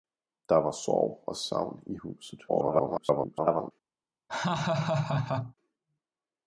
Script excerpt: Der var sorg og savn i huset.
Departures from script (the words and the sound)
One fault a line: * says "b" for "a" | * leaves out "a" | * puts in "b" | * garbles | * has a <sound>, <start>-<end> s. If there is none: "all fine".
* garbles
* has a laugh, 4.3-5.5 s